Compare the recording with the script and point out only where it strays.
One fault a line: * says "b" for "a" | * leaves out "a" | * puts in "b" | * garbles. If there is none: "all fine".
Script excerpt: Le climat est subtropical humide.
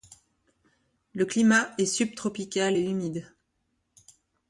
* puts in "et"